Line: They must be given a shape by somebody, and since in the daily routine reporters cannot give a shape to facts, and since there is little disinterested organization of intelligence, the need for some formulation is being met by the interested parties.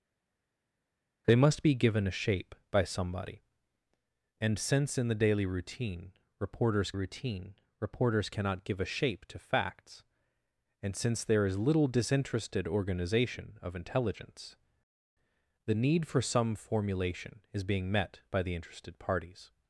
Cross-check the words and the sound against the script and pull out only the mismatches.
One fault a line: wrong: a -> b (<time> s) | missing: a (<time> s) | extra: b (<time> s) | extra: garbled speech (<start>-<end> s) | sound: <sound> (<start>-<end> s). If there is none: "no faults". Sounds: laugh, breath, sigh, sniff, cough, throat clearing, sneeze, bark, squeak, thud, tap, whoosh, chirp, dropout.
extra: routine reporters (6.9 s)